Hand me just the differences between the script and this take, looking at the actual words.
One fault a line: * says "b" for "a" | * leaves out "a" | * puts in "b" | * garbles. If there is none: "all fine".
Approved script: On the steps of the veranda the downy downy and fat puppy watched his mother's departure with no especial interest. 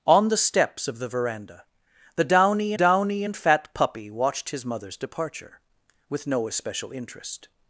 all fine